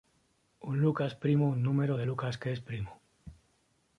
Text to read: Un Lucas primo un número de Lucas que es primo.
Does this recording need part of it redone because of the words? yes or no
no